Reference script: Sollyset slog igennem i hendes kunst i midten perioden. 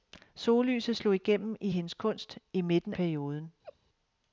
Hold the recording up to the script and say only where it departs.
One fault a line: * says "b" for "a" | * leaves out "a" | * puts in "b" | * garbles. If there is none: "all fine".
all fine